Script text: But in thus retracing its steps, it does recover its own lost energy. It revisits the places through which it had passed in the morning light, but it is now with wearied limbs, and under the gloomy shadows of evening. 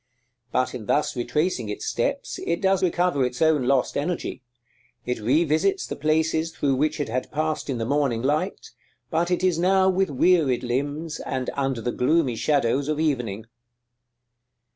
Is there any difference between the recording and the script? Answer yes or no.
no